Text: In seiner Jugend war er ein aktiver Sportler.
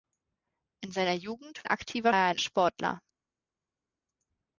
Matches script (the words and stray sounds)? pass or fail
fail